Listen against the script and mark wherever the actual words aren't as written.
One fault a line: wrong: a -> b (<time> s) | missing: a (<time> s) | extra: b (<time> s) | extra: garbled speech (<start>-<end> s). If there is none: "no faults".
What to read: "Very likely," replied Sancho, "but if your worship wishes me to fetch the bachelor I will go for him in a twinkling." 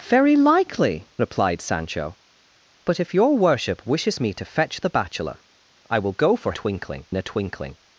wrong: him -> twinkling (6.5 s)